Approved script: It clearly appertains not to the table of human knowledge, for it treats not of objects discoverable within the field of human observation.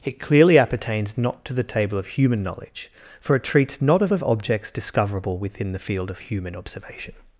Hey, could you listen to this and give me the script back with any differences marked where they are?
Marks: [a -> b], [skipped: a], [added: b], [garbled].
It clearly appertains not to the table of human knowledge, for it treats not of [added: of] objects discoverable within the field of human observation.